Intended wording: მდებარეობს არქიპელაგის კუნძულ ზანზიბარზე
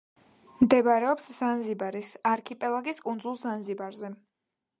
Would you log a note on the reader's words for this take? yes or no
yes